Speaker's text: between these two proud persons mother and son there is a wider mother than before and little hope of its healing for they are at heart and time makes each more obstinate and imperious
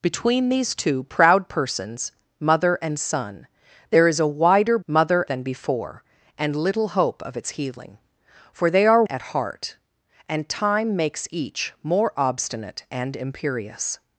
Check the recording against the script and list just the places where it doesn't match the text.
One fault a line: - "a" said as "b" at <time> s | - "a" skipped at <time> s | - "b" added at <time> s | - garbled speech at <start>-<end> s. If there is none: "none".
none